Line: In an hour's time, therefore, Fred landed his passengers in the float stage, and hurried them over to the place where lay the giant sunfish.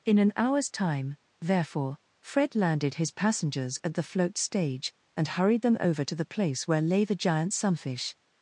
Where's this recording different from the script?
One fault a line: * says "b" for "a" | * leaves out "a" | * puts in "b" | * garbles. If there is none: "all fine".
* says "at" for "in"